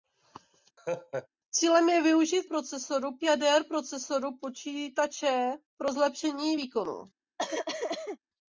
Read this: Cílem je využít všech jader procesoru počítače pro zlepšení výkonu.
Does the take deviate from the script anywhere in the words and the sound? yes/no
yes